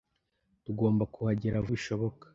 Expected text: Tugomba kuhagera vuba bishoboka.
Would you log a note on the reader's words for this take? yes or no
yes